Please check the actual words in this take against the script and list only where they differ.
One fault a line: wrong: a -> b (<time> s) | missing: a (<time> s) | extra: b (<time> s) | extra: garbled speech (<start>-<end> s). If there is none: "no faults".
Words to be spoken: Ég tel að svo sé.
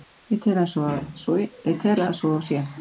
no faults